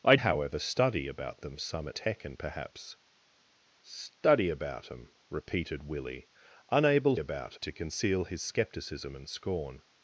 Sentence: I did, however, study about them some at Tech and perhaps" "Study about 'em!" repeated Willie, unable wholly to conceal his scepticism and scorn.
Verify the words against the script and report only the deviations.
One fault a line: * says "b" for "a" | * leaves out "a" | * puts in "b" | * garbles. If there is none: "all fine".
* leaves out "did"
* leaves out "at"
* says "about" for "wholly"